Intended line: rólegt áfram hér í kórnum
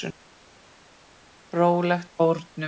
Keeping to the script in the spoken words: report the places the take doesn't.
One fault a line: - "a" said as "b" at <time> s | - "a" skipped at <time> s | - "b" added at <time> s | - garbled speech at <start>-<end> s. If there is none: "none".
- "áfram hér í" skipped at 2.1 s